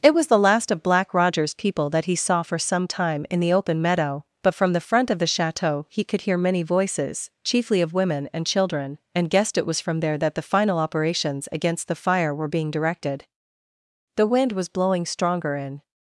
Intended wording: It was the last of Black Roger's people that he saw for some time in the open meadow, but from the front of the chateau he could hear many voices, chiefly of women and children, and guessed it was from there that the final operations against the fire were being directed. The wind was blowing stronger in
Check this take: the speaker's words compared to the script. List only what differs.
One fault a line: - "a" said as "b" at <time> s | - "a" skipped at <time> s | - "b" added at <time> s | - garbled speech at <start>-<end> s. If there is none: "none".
none